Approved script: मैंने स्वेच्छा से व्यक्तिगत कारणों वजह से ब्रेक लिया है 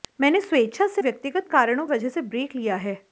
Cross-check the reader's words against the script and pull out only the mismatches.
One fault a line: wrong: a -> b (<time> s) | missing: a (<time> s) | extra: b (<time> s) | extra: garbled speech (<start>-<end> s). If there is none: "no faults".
no faults